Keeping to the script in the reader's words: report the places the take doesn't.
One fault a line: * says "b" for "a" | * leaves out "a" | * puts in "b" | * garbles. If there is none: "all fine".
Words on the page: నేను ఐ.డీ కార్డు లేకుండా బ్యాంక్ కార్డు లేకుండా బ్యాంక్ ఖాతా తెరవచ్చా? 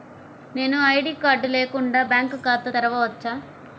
* leaves out "కార్డు లేకుండా బ్యాంక్"